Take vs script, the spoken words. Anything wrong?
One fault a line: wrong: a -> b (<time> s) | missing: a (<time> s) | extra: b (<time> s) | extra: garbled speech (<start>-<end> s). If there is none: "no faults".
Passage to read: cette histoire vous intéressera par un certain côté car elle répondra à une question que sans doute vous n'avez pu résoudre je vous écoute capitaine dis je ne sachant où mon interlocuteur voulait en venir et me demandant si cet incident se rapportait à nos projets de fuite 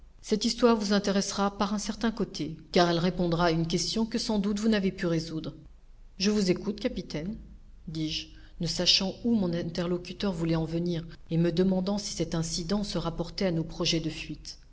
no faults